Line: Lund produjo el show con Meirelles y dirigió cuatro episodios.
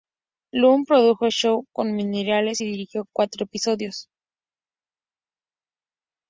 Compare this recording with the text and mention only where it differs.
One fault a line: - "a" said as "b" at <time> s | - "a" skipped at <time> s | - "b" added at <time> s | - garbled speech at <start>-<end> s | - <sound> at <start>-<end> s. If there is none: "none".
none